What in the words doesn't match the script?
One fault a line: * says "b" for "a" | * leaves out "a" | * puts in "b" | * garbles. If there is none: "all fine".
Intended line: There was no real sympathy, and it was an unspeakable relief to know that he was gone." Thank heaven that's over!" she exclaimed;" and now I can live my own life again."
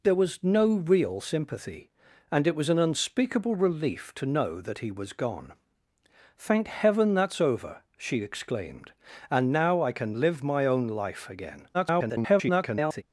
* garbles